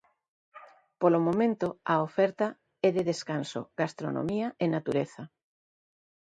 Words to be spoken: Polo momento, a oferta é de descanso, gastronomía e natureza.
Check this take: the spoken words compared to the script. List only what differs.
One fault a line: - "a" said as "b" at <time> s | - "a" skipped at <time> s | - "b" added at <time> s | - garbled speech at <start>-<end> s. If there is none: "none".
none